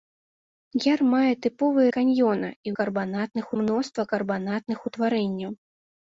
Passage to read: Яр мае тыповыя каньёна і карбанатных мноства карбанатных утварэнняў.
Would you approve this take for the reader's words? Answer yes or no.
yes